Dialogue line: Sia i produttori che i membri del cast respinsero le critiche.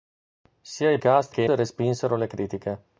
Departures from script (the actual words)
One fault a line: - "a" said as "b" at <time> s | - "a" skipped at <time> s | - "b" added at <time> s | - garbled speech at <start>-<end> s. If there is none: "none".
- "produttori" said as "cast" at 1.0 s
- "membri del cast" skipped at 1.5 s